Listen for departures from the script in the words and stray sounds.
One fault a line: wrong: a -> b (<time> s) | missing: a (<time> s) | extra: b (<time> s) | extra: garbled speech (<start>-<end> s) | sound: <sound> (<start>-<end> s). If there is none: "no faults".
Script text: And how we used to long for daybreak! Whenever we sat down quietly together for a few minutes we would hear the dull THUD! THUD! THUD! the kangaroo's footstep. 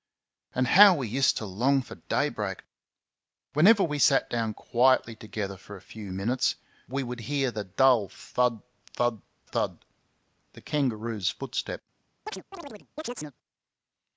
sound: chirp (12.3-13.4 s)